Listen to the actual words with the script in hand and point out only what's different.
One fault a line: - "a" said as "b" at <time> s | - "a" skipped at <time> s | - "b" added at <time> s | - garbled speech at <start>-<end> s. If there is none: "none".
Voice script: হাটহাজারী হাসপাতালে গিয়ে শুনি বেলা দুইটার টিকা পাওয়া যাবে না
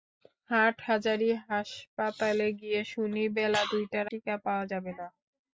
none